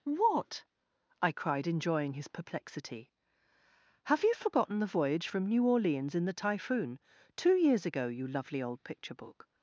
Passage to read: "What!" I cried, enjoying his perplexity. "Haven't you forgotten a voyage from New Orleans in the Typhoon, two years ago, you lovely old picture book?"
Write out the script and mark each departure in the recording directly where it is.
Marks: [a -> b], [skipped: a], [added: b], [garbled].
"What!" I cried, enjoying his perplexity. ["Haven't -> Have] you forgotten [a -> the] voyage from New Orleans in the Typhoon, two years ago, you lovely old picture book?"